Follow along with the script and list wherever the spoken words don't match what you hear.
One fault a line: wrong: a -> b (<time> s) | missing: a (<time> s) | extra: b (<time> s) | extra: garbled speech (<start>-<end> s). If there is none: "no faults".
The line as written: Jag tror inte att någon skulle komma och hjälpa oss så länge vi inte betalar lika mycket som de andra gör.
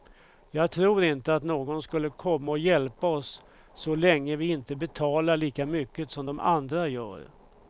no faults